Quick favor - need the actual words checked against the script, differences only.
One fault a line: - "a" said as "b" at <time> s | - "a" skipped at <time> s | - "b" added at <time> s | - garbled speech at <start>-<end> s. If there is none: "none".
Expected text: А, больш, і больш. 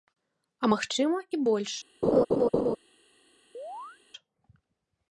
- "больш" said as "магчыма" at 0.7 s